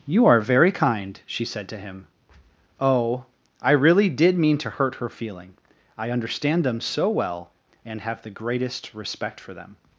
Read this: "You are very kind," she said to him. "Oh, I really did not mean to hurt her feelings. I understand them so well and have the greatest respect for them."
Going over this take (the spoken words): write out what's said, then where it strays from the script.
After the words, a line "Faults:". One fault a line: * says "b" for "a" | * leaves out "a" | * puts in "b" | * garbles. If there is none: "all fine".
"You are very kind," she said to him. "Oh, I really did mean to hurt her feeling. I understand them so well and have the greatest respect for them."
Faults:
* leaves out "not"
* says "feeling" for "feelings"